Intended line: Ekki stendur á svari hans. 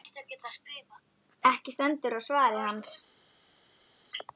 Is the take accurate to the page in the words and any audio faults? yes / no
yes